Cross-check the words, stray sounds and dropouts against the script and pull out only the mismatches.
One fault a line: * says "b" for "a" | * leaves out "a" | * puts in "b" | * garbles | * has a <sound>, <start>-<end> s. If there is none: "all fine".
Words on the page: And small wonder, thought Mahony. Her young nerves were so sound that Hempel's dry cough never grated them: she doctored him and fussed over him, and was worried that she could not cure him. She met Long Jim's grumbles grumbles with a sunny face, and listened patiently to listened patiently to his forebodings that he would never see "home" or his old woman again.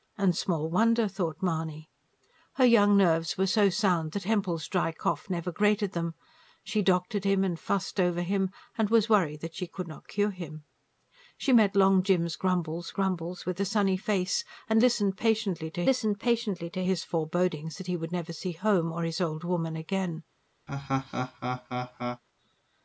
* has a laugh, 20.7-22.2 s